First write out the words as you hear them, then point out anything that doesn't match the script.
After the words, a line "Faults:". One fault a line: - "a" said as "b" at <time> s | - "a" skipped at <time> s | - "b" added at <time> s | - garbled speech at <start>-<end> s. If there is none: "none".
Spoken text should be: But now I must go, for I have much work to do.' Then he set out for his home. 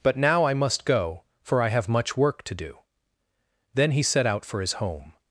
But now I must go, for I have much work to do.' Then he set out for his home.
Faults:
none